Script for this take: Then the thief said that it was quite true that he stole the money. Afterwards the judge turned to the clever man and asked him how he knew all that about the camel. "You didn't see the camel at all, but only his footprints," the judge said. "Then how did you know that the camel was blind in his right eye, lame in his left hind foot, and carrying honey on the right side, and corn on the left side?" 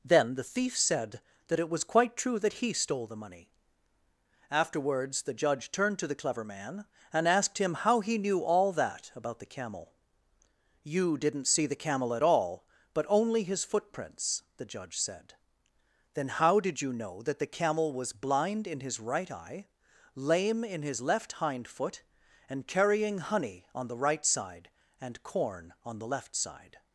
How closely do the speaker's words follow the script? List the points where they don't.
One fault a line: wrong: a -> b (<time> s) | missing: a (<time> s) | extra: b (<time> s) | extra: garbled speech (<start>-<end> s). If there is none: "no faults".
no faults